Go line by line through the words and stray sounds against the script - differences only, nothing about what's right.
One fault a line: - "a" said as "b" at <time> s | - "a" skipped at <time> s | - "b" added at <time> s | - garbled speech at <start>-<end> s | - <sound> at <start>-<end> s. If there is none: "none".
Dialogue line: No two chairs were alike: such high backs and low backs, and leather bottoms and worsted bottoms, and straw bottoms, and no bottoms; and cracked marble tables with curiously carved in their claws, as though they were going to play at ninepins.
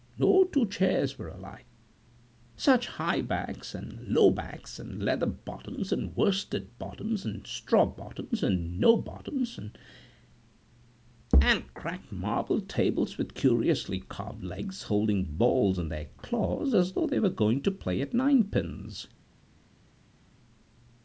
- "legs holding balls" added at 14.5 s